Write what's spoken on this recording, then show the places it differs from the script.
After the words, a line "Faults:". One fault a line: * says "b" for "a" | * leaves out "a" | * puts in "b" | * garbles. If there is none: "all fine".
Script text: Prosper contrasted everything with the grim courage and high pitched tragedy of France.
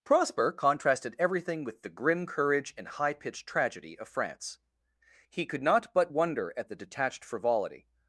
Prosper contrasted everything with the grim courage and high pitched tragedy of France. He could not but wonder at the detached frivolity
Faults:
* puts in "He could not but wonder at the detached frivolity"